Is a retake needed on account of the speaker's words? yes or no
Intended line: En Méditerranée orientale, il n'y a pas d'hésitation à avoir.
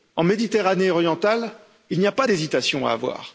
no